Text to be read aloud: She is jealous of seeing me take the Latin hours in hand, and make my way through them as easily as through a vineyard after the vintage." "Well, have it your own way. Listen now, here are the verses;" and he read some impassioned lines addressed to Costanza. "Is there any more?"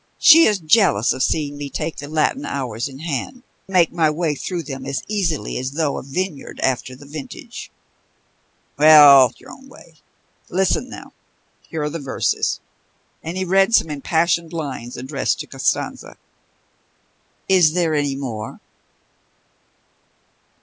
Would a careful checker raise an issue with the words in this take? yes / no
yes